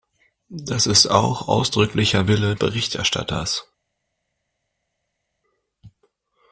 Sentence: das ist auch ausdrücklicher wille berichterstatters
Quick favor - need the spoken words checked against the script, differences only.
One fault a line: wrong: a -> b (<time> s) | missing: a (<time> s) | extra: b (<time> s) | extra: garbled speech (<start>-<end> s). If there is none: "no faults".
no faults